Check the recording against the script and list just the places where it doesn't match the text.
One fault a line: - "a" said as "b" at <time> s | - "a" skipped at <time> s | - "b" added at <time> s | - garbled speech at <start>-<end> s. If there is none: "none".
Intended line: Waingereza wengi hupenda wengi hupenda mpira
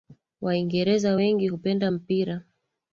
- "wengi hupenda" skipped at 1.9 s